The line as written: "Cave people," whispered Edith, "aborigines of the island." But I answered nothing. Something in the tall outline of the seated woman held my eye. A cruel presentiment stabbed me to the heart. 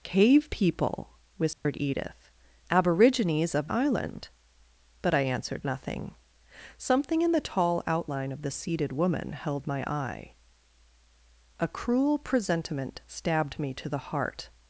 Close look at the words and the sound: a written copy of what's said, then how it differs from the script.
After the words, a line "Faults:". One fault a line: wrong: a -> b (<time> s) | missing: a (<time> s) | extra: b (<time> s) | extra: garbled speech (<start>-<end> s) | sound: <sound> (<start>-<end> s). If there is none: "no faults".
"Cave people," whispered Edith, "aborigines of island." But I answered nothing. Something in the tall outline of the seated woman held my eye. A cruel presentiment stabbed me to the heart.
Faults:
sound: dropout (1.5-1.7 s)
missing: the (3.7 s)